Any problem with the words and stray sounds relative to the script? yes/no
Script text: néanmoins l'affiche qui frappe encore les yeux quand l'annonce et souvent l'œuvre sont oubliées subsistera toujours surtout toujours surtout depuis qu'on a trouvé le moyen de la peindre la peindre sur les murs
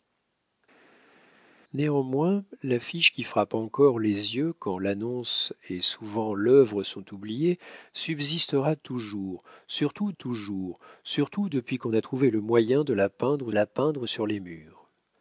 no